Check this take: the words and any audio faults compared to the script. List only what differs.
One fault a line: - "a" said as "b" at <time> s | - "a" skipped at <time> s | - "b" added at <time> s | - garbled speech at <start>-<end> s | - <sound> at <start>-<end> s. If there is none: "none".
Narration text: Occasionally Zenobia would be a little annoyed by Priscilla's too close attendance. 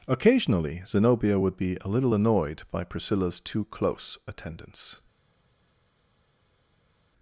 none